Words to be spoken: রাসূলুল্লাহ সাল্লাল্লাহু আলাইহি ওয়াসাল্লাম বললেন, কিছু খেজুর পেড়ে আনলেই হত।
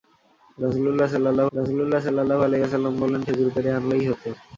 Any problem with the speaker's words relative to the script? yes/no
yes